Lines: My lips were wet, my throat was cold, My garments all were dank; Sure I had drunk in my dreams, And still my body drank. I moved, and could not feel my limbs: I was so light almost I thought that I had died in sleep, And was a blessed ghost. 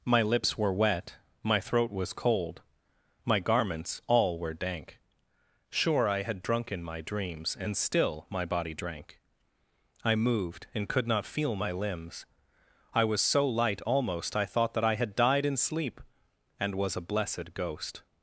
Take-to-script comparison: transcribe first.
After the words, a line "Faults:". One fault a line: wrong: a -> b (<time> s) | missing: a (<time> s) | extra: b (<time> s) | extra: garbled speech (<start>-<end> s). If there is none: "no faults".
My lips were wet, my throat was cold, My garments all were dank; Sure I had drunk in my dreams, And still my body drank. I moved, and could not feel my limbs: I was so light almost I thought that I had died in sleep, And was a blessed ghost.
Faults:
no faults